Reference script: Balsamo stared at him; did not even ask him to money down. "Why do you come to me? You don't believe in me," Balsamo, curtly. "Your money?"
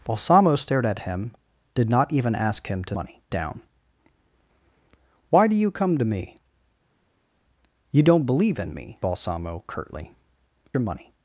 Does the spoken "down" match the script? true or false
true